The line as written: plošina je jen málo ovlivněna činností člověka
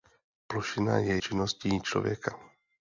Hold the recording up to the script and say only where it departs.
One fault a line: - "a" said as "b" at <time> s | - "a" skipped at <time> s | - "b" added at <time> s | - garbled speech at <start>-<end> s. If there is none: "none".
- "jen málo ovlivněna" skipped at 1.2 s